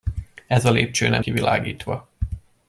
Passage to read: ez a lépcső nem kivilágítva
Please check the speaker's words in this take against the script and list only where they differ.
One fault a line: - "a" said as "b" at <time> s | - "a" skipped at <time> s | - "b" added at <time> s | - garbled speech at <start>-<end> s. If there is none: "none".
none